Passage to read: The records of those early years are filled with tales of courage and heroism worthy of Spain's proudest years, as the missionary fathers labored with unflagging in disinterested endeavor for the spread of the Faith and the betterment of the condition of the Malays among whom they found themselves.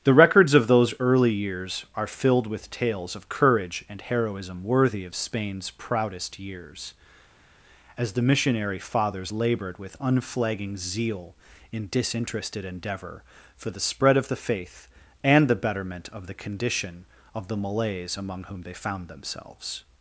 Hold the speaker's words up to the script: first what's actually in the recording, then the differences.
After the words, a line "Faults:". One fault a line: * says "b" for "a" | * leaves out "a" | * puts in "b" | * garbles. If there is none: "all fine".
The records of those early years are filled with tales of courage and heroism worthy of Spain's proudest years, as the missionary fathers labored with unflagging zeal in disinterested endeavor for the spread of the Faith and the betterment of the condition of the Malays among whom they found themselves.
Faults:
* puts in "zeal"